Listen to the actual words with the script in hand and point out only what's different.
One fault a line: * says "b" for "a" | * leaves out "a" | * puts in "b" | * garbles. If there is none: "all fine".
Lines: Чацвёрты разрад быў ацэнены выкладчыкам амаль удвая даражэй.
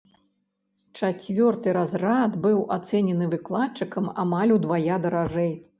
all fine